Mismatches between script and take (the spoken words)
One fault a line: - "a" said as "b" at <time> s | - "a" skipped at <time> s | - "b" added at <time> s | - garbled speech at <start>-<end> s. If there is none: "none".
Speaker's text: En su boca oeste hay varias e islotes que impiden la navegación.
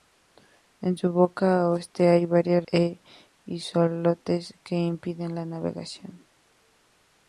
none